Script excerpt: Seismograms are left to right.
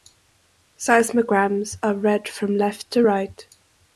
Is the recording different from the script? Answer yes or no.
yes